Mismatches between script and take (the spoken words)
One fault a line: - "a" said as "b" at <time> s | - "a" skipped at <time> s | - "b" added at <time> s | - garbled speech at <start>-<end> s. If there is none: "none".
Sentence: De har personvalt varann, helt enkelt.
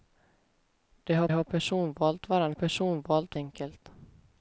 - "har" added at 1.3 s
- "helt" said as "personvalt" at 2.5 s